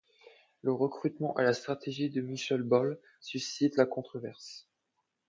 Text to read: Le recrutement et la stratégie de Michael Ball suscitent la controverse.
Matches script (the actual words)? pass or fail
pass